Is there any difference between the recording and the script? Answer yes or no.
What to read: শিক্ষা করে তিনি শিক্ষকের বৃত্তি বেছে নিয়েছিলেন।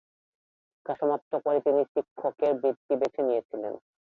yes